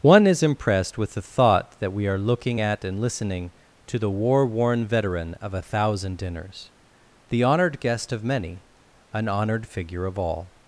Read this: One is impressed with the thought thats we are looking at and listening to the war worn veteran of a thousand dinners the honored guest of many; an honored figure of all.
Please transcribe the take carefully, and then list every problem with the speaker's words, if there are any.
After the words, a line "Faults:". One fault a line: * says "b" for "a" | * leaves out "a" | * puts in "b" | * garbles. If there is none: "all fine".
One is impressed with the thought that we are looking at and listening to the war worn veteran of a thousand dinners the honored guest of many; an honored figure of all.
Faults:
* says "that" for "thats"